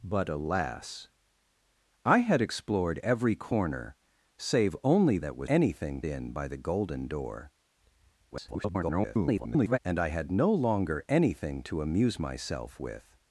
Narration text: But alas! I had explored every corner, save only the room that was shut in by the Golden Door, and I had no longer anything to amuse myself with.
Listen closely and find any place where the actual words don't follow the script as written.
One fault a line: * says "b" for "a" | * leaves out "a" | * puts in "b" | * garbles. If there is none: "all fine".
* leaves out "the room"
* says "anything" for "shut"
* garbles